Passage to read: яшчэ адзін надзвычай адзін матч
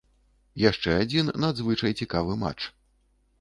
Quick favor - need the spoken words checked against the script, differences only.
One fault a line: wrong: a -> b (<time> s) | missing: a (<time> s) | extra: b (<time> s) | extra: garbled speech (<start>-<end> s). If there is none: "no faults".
wrong: адзін -> цікавы (2.0 s)